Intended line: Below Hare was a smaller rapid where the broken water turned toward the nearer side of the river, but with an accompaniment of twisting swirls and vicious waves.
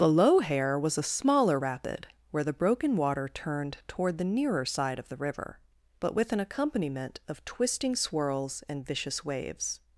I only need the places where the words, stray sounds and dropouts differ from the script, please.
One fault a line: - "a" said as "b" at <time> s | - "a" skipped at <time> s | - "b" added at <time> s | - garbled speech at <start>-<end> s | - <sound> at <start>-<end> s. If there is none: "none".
none